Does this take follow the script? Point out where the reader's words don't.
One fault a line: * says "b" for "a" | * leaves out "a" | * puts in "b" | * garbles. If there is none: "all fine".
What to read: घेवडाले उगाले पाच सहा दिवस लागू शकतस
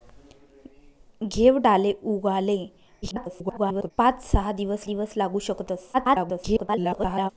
* garbles
* puts in "दिवस"
* garbles